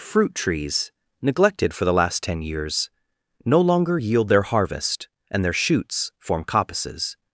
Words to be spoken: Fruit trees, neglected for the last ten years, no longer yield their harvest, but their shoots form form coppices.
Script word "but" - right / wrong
wrong